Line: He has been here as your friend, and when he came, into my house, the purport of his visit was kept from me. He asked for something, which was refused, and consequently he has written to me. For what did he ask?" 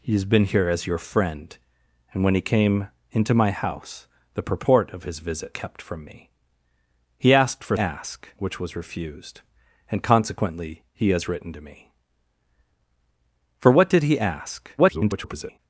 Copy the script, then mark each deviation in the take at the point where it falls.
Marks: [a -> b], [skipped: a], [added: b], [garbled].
He has been here as your friend, and when he came, into my house, the purport of his visit [skipped: was] kept from me. He asked for [something, -> ask] which was refused, and consequently he has written to me. For what did he ask?" [garbled]